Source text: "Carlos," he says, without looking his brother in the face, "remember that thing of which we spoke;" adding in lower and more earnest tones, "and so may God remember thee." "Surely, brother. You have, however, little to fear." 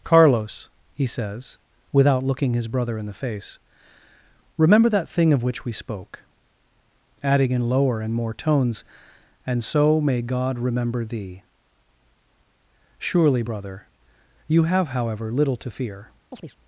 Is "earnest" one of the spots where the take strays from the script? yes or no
yes